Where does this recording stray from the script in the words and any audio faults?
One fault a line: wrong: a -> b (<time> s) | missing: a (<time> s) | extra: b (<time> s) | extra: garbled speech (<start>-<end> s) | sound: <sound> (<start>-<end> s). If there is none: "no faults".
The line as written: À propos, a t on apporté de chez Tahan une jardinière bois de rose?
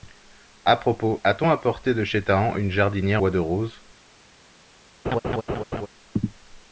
sound: laugh (5.0-5.9 s)